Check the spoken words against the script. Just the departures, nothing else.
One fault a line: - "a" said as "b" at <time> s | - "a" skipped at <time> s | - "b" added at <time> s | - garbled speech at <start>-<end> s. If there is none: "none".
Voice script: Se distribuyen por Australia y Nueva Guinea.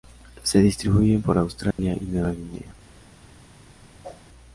none